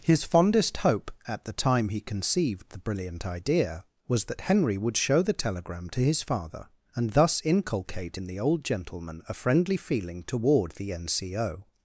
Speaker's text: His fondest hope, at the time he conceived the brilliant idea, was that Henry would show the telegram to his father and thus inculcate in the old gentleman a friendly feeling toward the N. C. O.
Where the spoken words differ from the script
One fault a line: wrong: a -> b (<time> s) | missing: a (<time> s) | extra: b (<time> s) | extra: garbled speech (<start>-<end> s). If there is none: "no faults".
no faults